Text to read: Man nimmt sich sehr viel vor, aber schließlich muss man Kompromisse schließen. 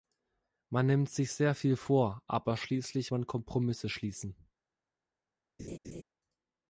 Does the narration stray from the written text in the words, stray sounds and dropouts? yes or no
yes